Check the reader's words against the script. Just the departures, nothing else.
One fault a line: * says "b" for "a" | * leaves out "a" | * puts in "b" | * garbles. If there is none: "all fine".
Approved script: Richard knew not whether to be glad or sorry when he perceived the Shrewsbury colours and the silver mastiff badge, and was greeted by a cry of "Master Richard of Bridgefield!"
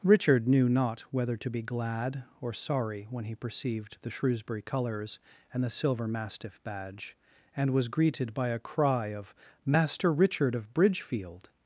all fine